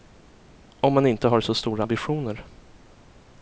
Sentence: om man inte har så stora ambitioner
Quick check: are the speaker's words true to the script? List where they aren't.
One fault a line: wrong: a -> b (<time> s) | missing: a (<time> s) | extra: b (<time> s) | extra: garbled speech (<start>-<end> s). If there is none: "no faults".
no faults